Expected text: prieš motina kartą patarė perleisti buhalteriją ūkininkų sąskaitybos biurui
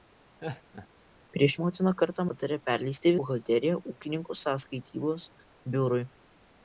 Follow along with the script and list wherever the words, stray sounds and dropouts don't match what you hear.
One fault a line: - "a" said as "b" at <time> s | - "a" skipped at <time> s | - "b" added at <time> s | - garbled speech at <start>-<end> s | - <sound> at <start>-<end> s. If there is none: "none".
- laugh at 0.4-0.9 s